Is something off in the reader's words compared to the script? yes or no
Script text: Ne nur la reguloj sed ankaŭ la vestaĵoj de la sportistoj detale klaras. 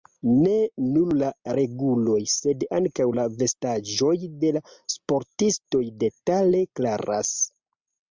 no